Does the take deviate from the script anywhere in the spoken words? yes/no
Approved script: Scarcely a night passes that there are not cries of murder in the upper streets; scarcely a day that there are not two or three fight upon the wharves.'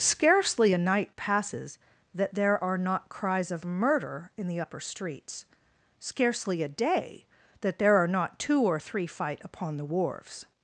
no